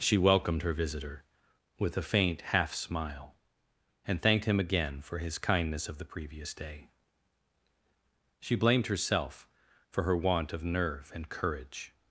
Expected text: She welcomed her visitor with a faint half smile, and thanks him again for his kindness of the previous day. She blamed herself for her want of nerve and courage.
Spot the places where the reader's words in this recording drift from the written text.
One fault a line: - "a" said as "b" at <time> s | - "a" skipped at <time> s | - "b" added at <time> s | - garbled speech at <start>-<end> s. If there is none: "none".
- "thanks" said as "thanked" at 4.2 s